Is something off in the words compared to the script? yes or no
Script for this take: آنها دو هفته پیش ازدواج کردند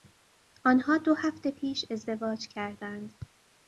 no